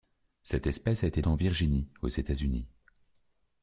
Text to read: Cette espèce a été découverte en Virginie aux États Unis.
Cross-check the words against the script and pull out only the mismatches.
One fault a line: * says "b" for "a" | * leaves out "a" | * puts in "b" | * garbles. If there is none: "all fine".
* leaves out "découverte"